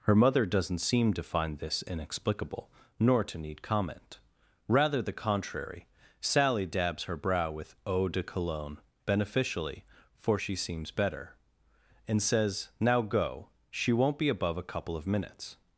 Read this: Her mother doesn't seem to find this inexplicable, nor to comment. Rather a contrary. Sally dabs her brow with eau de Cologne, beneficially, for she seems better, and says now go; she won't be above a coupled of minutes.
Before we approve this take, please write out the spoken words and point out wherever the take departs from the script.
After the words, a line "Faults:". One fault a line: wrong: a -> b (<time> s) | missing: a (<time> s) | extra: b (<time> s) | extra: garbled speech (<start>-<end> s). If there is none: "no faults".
Her mother doesn't seem to find this inexplicable, nor to need comment. Rather the contrary. Sally dabs her brow with eau de Cologne, beneficially, for she seems better, and says now go; she won't be above a couple of minutes.
Faults:
extra: need (3.4 s)
wrong: a -> the (5.0 s)
wrong: coupled -> couple (14.6 s)